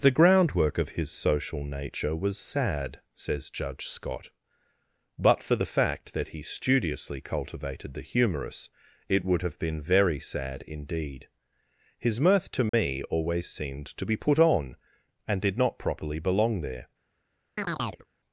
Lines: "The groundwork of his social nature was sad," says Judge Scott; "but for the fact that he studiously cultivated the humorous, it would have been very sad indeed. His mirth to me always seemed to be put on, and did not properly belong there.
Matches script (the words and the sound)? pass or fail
fail